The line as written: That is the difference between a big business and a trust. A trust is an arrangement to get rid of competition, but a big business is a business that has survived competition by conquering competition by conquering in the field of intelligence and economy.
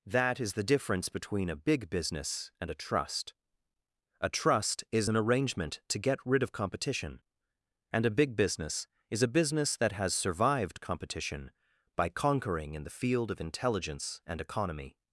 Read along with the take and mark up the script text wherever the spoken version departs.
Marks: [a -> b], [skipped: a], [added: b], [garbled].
That is the difference between a big business and a trust. A trust is an arrangement to get rid of competition, [but -> and] a big business is a business that has survived competition by conquering [skipped: competition by conquering] in the field of intelligence and economy.